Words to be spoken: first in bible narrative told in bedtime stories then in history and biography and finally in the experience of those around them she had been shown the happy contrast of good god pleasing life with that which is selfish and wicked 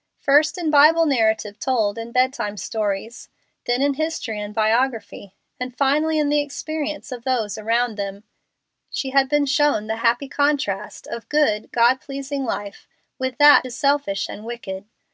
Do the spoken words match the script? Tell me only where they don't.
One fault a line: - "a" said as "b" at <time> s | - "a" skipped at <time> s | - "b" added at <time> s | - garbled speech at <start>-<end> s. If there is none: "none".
- "which" skipped at 13.7 s